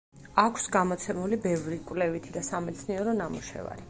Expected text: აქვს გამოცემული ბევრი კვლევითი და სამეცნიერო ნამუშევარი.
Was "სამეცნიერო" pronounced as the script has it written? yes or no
yes